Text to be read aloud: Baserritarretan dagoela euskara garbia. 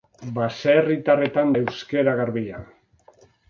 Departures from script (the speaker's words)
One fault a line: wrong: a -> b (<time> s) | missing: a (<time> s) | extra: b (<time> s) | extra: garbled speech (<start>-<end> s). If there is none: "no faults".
missing: dagoela (1.5 s)